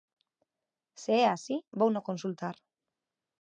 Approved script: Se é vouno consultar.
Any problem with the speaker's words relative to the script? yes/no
yes